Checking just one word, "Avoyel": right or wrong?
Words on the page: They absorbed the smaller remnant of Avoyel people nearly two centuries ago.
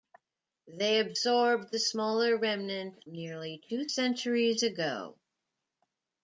wrong